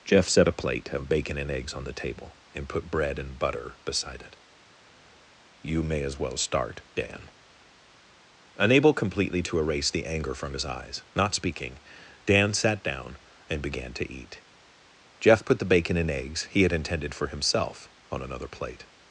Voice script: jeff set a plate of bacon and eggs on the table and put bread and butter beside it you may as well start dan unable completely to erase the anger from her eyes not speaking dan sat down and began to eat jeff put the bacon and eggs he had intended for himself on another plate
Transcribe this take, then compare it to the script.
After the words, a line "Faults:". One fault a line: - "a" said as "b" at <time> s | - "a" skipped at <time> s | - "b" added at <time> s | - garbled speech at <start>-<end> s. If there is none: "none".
jeff set a plate of bacon and eggs on the table and put bread and butter beside it you may as well start dan unable completely to erase the anger from his eyes not speaking dan sat down and began to eat jeff put the bacon and eggs he had intended for himself on another plate
Faults:
- "her" said as "his" at 10.5 s